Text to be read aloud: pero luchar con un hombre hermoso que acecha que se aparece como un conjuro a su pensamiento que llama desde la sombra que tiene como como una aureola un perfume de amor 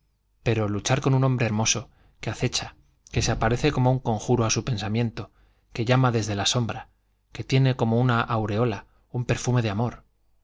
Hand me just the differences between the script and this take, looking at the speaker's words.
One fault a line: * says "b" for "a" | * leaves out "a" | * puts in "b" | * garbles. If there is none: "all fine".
* leaves out "como"